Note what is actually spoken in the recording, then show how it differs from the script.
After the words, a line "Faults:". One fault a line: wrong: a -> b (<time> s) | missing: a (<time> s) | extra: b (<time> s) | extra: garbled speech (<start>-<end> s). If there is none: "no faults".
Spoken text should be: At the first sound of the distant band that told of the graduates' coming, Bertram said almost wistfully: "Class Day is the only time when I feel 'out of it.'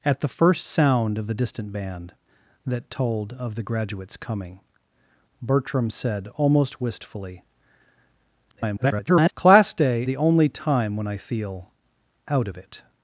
At the first sound of the distant band that told of the graduates' coming, Bertram said almost wistfully: [garbled] "Class Day the only time when I feel 'out of it.'
Faults:
extra: garbled speech (8.5-9.3 s)
missing: is (10.0 s)